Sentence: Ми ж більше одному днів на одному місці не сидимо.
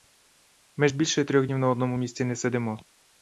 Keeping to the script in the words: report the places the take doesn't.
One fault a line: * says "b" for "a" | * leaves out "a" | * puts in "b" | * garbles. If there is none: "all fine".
* says "трьох" for "одному"